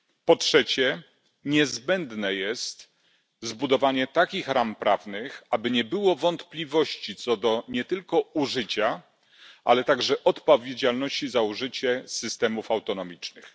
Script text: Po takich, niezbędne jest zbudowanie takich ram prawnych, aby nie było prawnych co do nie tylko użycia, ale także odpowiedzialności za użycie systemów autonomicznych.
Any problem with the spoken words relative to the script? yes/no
yes